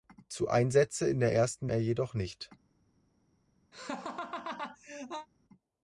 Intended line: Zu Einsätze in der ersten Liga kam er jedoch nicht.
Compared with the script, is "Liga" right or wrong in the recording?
wrong